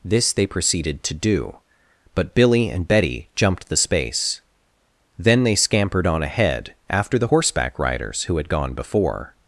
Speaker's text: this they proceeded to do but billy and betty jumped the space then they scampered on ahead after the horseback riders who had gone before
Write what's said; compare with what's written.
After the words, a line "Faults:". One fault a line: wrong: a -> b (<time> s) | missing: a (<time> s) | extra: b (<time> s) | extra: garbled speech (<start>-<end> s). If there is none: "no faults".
this they proceeded to do but billy and betty jumped the space then they scampered on ahead after the horseback riders who had gone before
Faults:
no faults